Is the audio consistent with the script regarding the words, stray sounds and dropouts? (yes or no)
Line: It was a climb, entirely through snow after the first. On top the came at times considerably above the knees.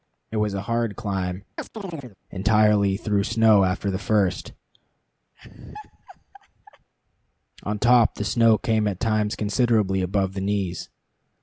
no